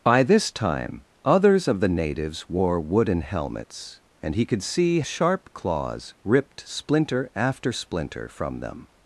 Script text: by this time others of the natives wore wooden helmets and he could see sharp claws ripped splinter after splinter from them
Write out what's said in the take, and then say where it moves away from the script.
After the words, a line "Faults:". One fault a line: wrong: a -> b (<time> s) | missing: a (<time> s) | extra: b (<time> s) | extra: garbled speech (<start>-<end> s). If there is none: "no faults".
by this time others of the natives wore wooden helmets and he could see sharp claws ripped splinter after splinter from them
Faults:
no faults